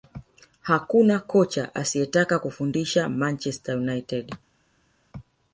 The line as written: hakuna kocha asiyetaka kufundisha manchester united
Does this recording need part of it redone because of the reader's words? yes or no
no